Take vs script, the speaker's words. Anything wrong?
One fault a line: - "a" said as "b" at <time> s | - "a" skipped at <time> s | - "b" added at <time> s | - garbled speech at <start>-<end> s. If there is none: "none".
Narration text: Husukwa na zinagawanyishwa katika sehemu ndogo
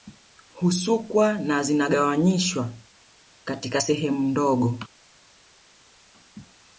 none